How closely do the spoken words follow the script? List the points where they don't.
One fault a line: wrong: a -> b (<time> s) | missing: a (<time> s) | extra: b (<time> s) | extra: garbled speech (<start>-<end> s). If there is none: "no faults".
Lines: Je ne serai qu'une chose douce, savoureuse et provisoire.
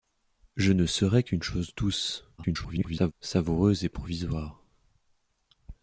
extra: garbled speech (2.4-3.1 s)